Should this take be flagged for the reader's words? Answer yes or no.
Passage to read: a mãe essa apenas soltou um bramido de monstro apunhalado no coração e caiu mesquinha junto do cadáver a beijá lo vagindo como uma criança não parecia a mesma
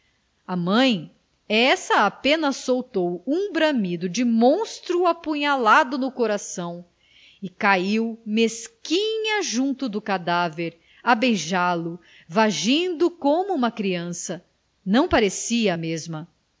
no